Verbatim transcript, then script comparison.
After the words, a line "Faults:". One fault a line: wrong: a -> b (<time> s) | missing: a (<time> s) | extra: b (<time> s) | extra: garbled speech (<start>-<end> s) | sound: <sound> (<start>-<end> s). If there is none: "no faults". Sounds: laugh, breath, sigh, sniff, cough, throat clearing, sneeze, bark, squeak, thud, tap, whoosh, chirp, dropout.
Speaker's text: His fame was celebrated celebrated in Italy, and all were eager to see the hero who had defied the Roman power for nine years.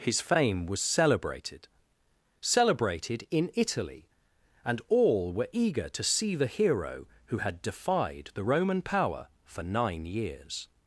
His fame was celebrated celebrated in Italy, and all were eager to see the hero who had defied the Roman power for nine years.
Faults:
no faults